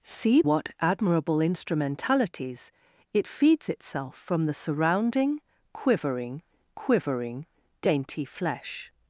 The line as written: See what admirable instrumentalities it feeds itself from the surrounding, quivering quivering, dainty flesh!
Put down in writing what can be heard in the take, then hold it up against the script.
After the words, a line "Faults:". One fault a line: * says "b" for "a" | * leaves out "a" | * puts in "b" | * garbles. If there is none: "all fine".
See what admirable instrumentalities it feeds itself from the surrounding, quivering quivering, dainty flesh!
Faults:
all fine